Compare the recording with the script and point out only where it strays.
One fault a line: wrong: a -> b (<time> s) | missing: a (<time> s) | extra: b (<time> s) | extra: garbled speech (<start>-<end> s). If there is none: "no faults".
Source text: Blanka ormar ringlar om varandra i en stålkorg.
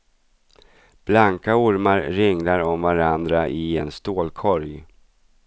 no faults